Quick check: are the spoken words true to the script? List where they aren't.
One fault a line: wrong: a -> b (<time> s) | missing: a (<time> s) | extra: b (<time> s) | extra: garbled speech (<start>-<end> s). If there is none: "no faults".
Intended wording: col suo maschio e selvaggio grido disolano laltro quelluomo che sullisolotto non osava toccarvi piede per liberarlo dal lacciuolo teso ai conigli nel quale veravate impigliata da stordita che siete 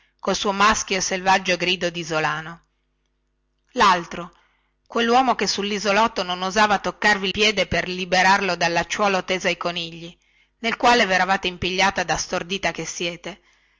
no faults